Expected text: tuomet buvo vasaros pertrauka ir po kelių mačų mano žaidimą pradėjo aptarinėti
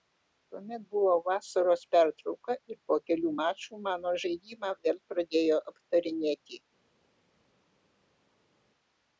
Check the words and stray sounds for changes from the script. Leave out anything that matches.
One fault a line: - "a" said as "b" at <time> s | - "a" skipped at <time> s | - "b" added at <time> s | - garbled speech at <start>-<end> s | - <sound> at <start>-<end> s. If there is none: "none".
- "vėl" added at 4.9 s